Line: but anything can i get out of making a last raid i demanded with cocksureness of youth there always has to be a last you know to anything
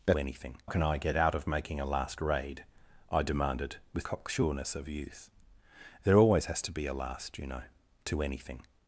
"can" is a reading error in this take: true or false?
false